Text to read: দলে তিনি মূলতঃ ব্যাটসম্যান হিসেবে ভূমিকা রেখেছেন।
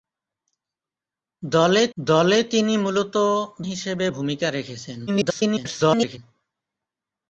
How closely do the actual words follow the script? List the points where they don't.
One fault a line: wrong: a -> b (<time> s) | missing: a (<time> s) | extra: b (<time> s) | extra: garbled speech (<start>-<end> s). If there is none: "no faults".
extra: দলে (2.0 s)
missing: ব্যাটসম্যান (3.3 s)
extra: garbled speech (5.1-6.2 s)